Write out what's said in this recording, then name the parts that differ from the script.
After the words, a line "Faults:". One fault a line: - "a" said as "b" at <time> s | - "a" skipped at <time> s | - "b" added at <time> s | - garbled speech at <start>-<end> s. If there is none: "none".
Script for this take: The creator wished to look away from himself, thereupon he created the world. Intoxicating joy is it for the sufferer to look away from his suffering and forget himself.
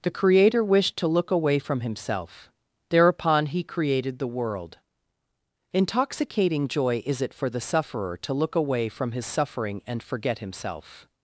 The creator wished to look away from himself, thereupon he created the world. Intoxicating joy is it for the sufferer to look away from his suffering and forget himself.
Faults:
none